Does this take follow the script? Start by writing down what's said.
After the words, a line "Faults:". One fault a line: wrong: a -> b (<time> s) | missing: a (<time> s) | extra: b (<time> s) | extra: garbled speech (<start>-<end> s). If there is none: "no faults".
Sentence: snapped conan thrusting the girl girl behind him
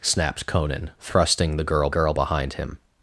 snapped conan thrusting the girl girl behind him
Faults:
no faults